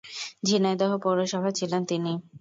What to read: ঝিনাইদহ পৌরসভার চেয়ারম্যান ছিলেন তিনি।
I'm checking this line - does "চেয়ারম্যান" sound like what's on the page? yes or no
no